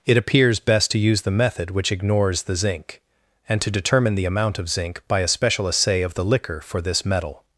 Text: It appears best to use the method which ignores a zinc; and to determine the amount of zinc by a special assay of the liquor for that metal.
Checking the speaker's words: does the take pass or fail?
fail